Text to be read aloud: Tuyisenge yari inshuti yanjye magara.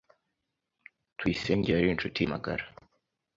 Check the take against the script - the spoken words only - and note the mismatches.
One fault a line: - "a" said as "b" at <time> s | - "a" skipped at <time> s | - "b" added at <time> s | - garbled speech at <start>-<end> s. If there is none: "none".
- "yanjye" skipped at 2.2 s